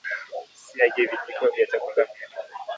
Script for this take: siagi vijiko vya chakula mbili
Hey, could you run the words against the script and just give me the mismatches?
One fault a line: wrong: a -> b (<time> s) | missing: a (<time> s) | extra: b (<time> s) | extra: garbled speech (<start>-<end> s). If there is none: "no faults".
no faults